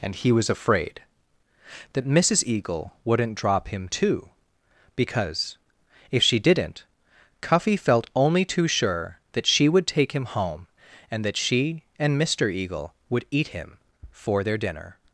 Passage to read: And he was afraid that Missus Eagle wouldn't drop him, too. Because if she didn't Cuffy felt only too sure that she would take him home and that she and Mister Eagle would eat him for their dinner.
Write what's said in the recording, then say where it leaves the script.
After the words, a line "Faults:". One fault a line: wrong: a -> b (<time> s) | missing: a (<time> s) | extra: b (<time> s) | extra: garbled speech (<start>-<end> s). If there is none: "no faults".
And he was afraid that Missus Eagle wouldn't drop him, too. Because if she didn't Cuffy felt only too sure that she would take him home and that she and Mister Eagle would eat him for their dinner.
Faults:
no faults